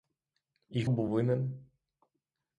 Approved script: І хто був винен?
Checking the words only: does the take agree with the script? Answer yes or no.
no